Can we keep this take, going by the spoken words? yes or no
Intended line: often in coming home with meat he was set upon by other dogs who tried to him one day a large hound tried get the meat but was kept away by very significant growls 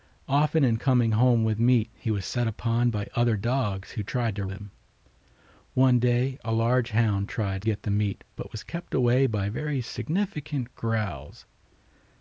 yes